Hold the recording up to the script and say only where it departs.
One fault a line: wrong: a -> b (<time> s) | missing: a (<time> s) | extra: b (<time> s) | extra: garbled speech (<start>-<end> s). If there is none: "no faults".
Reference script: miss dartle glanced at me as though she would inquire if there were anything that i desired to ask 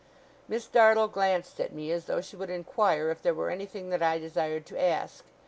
no faults